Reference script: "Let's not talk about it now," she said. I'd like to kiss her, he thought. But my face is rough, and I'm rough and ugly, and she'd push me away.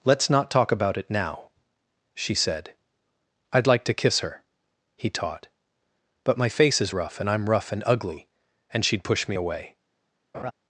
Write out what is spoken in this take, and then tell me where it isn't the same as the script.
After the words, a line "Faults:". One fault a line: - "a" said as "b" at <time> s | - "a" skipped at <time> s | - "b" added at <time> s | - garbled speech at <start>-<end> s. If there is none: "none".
"Let's not talk about it now," she said. I'd like to kiss her, he taught. But my face is rough, and I'm rough and ugly, and she'd push me away.
Faults:
- "thought" said as "taught" at 5.1 s